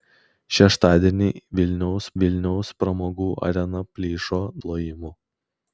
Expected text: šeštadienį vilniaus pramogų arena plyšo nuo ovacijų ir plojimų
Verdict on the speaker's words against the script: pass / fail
fail